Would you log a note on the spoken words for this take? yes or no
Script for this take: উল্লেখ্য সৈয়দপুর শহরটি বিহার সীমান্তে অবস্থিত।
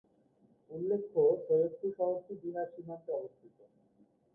no